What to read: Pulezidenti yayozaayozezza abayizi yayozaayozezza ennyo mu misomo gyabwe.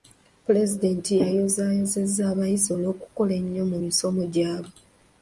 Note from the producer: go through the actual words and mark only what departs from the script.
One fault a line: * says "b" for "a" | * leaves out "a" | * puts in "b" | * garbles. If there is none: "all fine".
* says "olw'okukola" for "yayozaayozezza"